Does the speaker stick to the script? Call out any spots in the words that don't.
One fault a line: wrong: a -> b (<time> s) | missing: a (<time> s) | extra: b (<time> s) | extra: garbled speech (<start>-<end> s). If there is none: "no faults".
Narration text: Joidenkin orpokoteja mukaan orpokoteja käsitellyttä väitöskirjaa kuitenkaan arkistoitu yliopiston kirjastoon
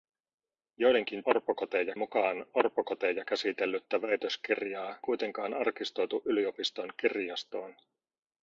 no faults